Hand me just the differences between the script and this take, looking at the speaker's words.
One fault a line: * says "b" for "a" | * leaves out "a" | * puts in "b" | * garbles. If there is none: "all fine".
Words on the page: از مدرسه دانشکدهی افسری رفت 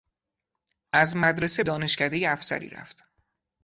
all fine